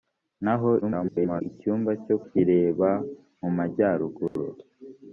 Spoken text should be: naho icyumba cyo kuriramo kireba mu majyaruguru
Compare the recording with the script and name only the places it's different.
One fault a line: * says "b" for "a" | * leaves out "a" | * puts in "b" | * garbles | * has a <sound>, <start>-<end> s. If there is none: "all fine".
* garbles
* leaves out "kuriramo"
* has a dropout, 4.3-4.4 s